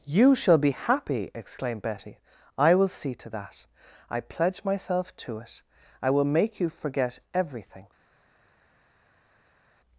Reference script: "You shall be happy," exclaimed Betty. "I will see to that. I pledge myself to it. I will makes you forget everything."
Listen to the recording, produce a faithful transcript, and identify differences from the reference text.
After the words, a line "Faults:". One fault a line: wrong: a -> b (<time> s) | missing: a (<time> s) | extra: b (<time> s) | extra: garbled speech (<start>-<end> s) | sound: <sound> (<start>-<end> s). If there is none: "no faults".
"You shall be happy," exclaimed Betty. "I will see to that. I pledge myself to it. I will make you forget everything."
Faults:
wrong: makes -> make (6.2 s)